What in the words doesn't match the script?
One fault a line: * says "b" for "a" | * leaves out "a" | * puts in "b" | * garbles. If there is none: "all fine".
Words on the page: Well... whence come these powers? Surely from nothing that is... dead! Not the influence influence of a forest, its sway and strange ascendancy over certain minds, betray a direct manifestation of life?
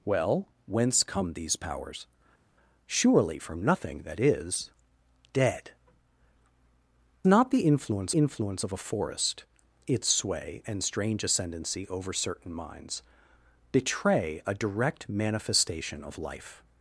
all fine